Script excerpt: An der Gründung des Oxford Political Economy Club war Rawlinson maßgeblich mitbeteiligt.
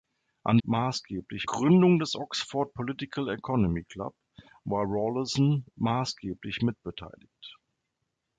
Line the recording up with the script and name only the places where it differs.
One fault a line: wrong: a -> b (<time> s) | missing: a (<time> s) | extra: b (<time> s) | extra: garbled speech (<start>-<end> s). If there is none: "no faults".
wrong: der -> maßgeblich (0.6 s)